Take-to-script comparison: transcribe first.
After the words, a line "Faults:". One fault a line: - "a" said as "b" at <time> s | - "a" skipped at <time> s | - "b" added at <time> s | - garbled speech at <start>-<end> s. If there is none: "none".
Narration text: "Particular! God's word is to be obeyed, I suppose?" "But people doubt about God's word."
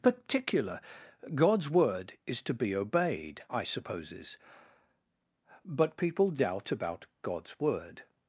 "Particular! God's word is to be obeyed, I supposes?" "But people doubt about God's word."
Faults:
- "suppose" said as "supposes" at 3.6 s